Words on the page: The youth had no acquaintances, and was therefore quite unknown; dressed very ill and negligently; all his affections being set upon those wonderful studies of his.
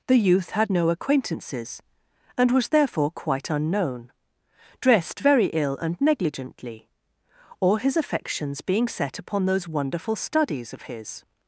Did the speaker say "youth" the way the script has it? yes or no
yes